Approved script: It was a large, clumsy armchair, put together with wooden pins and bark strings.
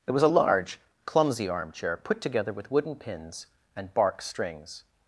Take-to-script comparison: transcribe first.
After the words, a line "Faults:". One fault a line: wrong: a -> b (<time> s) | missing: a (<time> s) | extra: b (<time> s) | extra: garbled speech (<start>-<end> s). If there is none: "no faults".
It was a large, clumsy armchair, put together with wooden pins and bark strings.
Faults:
no faults